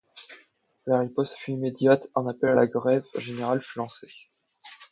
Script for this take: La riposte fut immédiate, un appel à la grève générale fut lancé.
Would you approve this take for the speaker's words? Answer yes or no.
yes